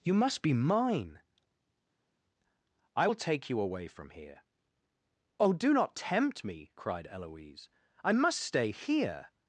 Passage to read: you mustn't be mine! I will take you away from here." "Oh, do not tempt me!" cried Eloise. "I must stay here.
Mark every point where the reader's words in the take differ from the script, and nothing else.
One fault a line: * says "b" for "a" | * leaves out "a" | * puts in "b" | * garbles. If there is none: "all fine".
* says "must" for "mustn't"